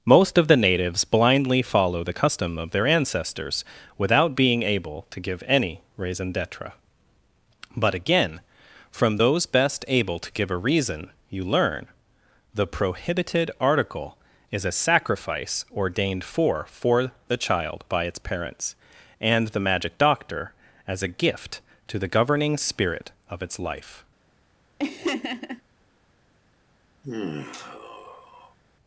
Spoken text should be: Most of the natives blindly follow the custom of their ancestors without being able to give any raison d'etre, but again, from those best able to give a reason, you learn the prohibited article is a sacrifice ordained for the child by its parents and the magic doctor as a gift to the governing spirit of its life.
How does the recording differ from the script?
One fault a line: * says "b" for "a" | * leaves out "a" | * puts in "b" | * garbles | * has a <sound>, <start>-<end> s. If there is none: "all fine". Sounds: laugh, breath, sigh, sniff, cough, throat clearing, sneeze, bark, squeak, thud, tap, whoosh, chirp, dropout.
* puts in "for"
* has a laugh, 24.8-25.6 s
* has a sigh, 27.0-28.6 s